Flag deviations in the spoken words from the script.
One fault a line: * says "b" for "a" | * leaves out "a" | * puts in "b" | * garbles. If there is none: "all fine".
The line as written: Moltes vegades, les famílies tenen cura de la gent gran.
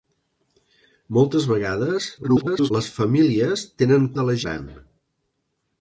* garbles
* leaves out "cura"
* leaves out "gent"